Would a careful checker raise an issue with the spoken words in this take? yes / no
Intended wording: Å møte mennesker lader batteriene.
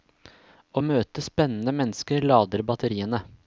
yes